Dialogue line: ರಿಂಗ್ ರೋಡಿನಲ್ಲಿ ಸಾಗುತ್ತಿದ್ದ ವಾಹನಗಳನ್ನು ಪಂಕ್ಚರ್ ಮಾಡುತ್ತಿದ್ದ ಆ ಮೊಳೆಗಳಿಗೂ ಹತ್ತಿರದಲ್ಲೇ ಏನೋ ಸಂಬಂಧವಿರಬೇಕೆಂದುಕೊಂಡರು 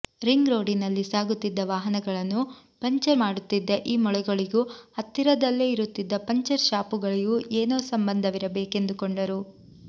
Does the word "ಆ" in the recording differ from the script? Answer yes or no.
yes